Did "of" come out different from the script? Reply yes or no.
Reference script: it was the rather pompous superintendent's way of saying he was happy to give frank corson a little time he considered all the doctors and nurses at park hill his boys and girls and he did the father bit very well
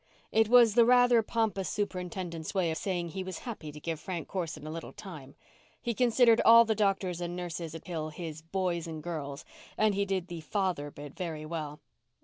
yes